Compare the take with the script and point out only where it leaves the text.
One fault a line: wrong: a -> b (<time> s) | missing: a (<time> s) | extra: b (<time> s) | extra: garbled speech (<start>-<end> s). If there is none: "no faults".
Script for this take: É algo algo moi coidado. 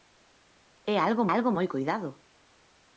no faults